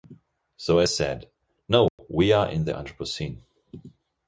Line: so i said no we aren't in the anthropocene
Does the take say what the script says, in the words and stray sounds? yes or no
no